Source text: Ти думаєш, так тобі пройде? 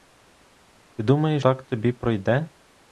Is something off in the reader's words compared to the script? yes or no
no